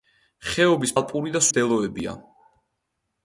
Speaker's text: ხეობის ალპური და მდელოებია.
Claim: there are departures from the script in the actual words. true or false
false